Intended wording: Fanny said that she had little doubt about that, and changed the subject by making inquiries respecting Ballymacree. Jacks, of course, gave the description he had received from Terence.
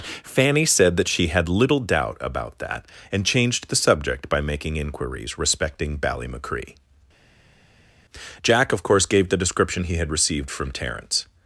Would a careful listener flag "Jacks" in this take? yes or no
yes